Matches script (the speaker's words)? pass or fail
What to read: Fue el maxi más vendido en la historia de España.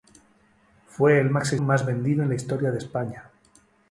pass